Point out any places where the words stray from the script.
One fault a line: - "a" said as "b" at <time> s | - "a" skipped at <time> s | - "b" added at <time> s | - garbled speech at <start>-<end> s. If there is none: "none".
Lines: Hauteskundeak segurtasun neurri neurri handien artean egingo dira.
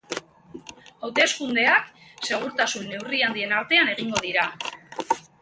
- "neurri" skipped at 3.2 s